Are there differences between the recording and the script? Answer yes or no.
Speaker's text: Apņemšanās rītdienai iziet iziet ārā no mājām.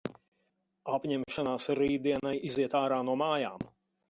yes